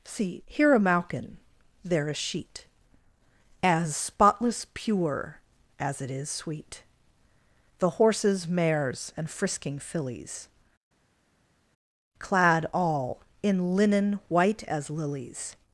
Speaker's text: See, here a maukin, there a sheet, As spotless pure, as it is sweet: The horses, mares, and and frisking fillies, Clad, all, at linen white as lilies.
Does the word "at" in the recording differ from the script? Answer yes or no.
yes